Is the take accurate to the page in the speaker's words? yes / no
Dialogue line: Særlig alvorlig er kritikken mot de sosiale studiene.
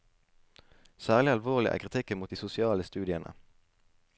yes